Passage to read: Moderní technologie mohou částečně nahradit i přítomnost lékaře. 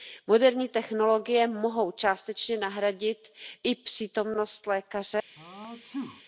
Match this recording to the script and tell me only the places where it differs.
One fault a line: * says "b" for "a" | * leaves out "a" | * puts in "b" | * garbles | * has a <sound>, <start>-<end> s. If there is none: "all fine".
* has a sneeze, 5.4-6.2 s